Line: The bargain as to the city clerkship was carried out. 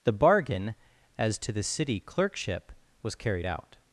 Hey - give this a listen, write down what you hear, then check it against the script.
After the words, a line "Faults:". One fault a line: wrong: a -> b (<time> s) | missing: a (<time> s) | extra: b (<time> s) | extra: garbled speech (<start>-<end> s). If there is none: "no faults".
The bargain as to the city clerkship was carried out.
Faults:
no faults